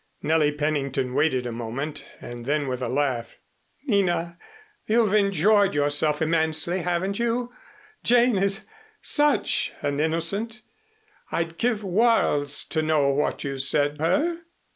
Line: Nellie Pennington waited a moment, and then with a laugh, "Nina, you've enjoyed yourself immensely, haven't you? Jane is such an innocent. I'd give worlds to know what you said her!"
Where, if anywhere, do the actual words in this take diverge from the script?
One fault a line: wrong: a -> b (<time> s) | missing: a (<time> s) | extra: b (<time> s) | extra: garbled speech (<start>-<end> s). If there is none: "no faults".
no faults